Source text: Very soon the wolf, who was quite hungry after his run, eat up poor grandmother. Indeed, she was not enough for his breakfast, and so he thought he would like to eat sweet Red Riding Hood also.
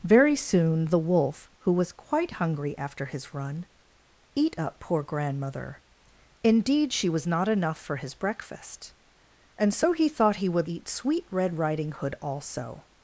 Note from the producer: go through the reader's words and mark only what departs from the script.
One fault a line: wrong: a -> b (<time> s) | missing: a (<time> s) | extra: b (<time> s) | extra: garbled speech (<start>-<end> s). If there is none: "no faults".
missing: like to (10.7 s)